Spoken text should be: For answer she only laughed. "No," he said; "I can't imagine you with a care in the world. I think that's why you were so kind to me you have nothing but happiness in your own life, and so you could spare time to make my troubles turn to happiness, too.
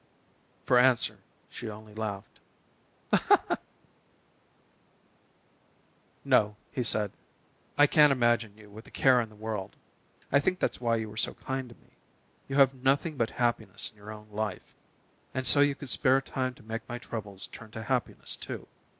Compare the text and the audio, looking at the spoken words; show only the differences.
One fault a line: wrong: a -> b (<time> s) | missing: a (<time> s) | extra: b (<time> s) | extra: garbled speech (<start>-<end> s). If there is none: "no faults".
no faults